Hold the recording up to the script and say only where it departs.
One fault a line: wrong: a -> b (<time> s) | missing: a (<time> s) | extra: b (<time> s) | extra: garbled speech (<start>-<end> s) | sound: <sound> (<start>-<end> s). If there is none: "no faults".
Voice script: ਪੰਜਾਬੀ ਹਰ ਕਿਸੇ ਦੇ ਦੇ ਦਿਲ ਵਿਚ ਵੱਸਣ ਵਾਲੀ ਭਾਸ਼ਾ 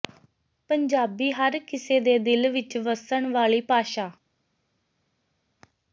missing: ਦੇ (2.2 s)